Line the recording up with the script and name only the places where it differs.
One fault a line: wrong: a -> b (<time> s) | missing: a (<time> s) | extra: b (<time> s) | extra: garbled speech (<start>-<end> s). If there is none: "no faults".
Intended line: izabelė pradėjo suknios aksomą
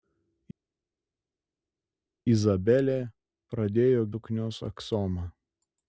no faults